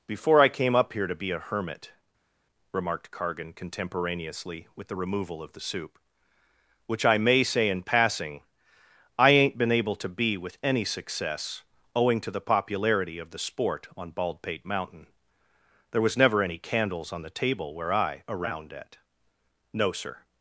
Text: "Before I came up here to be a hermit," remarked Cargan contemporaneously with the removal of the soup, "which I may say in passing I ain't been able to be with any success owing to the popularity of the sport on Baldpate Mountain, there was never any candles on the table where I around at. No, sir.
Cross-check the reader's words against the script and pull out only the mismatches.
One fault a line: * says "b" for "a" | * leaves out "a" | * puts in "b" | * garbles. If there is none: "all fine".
all fine